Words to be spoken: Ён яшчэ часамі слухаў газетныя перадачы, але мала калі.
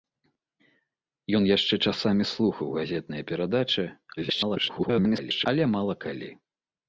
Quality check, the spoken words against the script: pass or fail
fail